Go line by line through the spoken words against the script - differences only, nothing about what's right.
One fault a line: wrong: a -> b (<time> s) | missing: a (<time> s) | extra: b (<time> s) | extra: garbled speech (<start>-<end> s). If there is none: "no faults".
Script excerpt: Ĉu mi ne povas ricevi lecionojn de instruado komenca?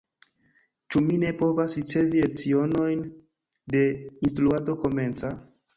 no faults